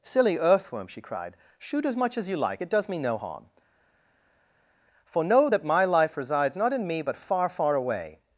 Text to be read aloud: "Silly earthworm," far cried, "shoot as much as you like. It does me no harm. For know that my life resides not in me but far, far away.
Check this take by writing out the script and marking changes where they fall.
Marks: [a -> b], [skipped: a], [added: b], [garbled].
"Silly earthworm," [far -> she] cried, "shoot as much as you like. It does me no harm. For know that my life resides not in me but far, far away.